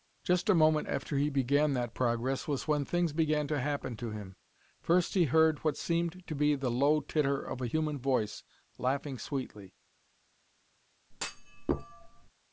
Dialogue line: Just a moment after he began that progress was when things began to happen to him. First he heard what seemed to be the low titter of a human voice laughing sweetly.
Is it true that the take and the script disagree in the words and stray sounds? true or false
true